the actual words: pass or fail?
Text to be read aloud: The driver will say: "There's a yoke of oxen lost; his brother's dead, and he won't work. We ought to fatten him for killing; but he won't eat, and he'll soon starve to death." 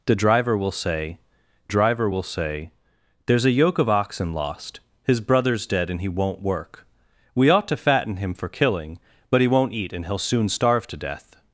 fail